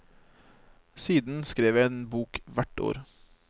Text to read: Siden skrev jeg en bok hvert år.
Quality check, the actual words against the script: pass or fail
pass